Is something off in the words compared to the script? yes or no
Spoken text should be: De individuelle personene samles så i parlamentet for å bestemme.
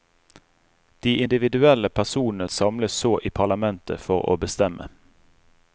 no